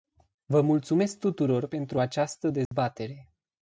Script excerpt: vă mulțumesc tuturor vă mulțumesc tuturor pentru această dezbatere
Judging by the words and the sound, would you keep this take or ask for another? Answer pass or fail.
fail